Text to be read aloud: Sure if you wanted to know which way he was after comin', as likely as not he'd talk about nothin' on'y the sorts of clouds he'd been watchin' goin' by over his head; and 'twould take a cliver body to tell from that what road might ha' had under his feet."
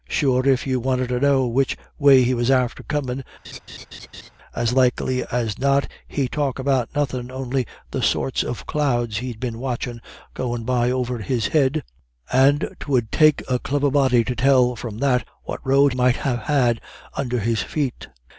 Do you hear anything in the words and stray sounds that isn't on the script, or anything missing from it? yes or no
yes